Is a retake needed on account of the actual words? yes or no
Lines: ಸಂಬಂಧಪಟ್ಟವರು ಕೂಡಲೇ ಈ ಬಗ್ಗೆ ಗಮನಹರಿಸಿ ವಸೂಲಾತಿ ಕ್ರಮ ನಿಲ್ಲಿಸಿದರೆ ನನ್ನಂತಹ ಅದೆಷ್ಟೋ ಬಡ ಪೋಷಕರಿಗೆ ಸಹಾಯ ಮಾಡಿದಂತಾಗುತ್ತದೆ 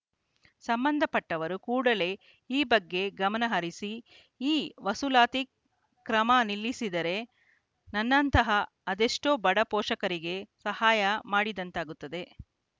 yes